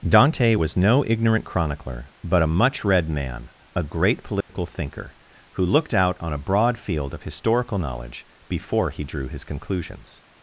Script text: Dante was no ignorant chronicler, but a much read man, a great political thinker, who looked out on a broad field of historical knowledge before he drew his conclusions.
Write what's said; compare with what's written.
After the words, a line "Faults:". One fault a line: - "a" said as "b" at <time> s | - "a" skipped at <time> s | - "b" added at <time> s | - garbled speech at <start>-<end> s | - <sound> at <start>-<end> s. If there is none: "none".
Dante was no ignorant chronicler, but a much read man, a great political thinker, who looked out on a broad field of historical knowledge before he drew his conclusions.
Faults:
- dropout at 4.4-4.5 s